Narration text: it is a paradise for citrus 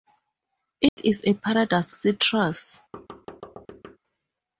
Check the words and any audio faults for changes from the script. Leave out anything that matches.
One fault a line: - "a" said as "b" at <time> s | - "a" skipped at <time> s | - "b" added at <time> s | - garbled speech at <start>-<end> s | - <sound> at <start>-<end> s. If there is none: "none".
- dropout at 0.9-1.0 s
- "for" skipped at 1.9 s
- thud at 2.9-4.0 s